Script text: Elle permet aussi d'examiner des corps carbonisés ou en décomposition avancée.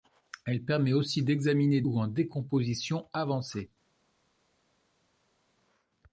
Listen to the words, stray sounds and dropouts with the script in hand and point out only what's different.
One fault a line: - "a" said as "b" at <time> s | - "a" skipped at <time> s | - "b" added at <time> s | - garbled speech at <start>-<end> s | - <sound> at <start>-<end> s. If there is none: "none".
- "des corps carbonisés" skipped at 1.8 s